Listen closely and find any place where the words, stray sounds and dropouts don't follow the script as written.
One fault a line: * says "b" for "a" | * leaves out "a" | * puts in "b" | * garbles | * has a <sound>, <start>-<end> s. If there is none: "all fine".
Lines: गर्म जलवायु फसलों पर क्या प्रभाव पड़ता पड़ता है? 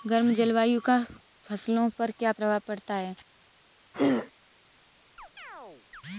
* puts in "का"
* leaves out "पड़ता"
* has a throat clearing, 3.9-4.3 s
* has a chirp, 5.2-6.0 s